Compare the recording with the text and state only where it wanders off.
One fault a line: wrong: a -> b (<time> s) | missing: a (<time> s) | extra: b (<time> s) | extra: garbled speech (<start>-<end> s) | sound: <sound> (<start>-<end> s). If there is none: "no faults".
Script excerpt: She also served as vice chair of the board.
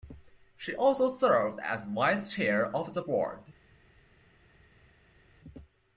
no faults